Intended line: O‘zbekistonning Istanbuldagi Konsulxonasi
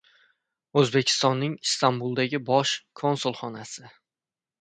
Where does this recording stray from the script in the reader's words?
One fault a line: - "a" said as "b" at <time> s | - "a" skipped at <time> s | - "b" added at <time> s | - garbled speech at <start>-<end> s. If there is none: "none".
- "Bosh" added at 2.5 s